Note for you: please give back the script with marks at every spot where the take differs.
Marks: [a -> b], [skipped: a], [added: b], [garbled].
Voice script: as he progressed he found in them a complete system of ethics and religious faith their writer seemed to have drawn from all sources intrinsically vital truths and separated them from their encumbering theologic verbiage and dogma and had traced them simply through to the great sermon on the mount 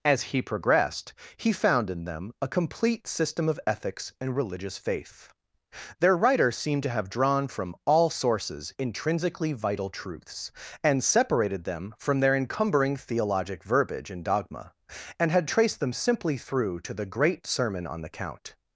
as he progressed he found in them a complete system of ethics and religious faith their writer seemed to have drawn from all sources intrinsically vital truths and separated them from their encumbering theologic verbiage and dogma and had traced them simply through to the great sermon on the [mount -> count]